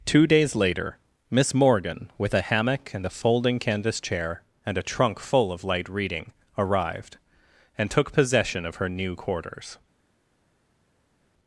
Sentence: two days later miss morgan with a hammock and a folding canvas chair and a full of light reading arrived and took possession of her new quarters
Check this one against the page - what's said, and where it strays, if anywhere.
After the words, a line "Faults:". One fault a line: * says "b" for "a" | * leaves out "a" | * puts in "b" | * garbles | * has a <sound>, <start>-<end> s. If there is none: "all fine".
two days later miss morgan with a hammock and a folding canvas chair and a trunk full of light reading arrived and took possession of her new quarters
Faults:
* puts in "trunk"